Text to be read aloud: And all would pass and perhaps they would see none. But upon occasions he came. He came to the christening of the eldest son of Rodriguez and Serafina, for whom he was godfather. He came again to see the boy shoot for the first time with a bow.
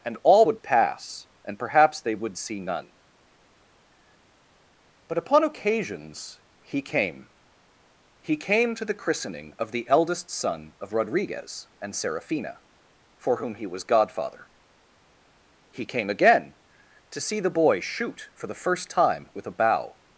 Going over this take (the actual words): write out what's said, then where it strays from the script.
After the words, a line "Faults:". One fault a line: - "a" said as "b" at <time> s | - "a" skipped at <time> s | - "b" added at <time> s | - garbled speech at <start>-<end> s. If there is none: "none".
And all would pass and perhaps they would see none. But upon occasions he came. He came to the christening of the eldest son of Rodriguez and Serafina, for whom he was godfather. He came again to see the boy shoot for the first time with a bow.
Faults:
none